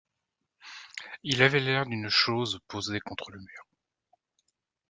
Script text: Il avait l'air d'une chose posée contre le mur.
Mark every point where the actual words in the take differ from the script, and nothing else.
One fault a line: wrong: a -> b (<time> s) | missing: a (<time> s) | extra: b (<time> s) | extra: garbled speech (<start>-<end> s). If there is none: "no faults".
no faults